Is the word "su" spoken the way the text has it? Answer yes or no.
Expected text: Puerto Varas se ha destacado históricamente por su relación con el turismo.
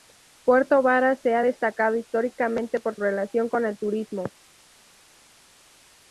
no